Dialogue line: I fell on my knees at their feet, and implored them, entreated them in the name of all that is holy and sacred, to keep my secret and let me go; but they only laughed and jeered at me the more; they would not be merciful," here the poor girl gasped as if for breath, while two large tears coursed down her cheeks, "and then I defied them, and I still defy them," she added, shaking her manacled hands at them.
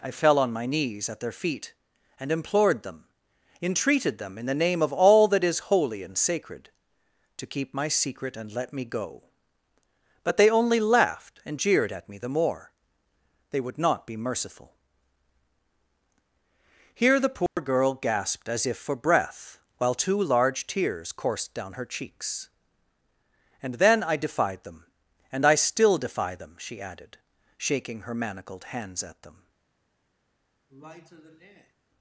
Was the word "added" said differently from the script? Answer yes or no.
no